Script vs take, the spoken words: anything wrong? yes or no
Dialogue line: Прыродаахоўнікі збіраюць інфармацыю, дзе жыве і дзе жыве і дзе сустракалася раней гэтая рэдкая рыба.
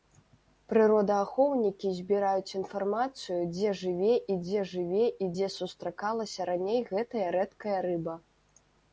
no